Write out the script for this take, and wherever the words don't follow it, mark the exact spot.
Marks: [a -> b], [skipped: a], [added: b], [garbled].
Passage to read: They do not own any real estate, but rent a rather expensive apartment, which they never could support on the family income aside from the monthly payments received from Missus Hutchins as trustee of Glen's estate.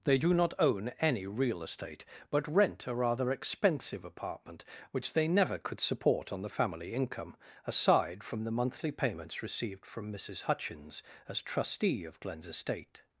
They do not own any real estate, but rent a rather expensive apartment, which they never could support on the family income aside from the monthly payments received from Missus Hutchins as trustee of Glen's estate.